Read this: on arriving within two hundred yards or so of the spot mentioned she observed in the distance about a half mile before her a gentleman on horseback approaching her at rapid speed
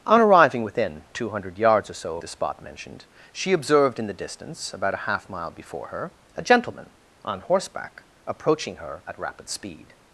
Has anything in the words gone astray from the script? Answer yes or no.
yes